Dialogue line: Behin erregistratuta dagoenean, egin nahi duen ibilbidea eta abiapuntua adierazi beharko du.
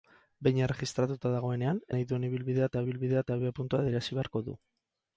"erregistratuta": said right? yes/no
yes